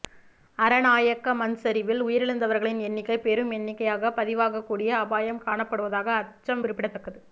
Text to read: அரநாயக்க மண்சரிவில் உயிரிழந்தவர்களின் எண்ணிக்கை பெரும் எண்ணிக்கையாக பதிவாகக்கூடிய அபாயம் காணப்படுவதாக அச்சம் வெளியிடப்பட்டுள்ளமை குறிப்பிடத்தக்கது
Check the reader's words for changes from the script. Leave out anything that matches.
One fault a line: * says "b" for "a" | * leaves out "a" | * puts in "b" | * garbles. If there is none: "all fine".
* leaves out "வெளியிடப்பட்டுள்ளமை"